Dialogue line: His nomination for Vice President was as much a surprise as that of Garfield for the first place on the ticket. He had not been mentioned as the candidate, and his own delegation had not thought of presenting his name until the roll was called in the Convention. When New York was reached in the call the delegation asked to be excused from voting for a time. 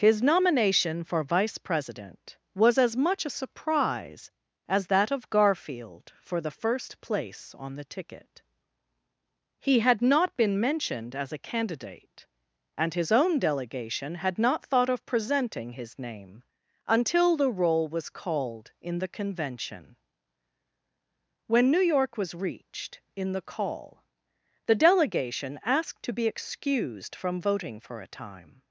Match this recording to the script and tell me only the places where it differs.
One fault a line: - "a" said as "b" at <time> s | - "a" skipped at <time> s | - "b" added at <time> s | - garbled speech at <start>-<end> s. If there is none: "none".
- "the" said as "a" at 11.3 s